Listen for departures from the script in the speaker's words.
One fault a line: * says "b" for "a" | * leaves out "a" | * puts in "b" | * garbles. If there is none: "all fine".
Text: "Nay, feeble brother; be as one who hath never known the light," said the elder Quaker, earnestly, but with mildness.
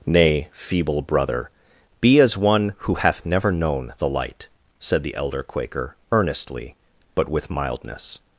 all fine